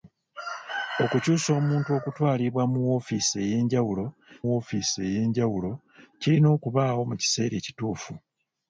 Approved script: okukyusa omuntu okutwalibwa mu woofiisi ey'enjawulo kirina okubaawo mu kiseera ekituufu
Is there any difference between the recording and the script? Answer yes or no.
yes